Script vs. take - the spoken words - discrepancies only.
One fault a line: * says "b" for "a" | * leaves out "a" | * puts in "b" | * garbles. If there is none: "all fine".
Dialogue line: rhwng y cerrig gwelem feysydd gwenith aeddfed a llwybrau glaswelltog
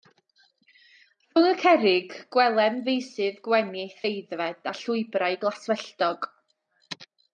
all fine